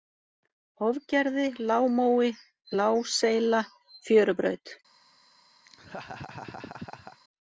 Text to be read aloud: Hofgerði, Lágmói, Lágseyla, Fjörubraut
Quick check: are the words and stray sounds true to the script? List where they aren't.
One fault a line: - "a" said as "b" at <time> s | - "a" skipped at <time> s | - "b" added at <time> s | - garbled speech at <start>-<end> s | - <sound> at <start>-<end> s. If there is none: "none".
- laugh at 5.6-7.2 s